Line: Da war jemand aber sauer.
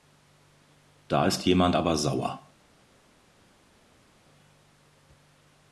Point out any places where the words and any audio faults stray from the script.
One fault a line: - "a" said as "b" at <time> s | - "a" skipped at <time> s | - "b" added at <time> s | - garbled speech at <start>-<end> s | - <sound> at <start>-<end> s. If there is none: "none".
- "war" said as "ist" at 1.3 s